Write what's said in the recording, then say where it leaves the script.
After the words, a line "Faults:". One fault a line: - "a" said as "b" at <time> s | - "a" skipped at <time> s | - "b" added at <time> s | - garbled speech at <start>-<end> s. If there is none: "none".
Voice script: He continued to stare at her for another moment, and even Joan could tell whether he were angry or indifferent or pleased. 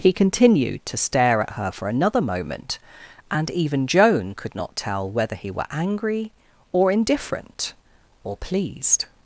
He continued to stare at her for another moment, and even Joan could not tell whether he were angry or indifferent or pleased.
Faults:
- "not" added at 4.5 s